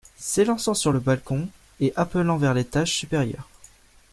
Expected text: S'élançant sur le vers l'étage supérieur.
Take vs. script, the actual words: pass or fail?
fail